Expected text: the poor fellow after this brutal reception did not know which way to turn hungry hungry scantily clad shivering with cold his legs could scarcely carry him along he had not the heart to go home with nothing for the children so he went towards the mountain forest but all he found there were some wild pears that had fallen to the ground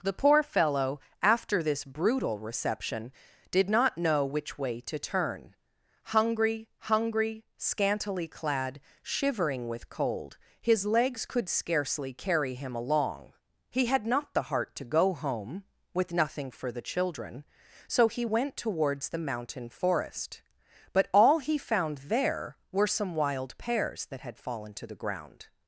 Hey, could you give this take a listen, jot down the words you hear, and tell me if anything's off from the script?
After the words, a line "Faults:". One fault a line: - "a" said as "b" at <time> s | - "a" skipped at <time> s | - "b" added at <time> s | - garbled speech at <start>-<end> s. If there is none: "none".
the poor fellow after this brutal reception did not know which way to turn hungry hungry scantily clad shivering with cold his legs could scarcely carry him along he had not the heart to go home with nothing for the children so he went towards the mountain forest but all he found there were some wild pears that had fallen to the ground
Faults:
none